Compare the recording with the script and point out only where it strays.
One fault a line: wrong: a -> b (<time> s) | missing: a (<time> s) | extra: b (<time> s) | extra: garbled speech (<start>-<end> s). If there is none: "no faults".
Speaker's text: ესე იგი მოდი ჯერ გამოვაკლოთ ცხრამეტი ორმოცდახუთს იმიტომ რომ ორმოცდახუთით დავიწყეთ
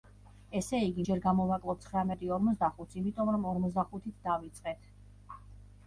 missing: მოდი (1.0 s)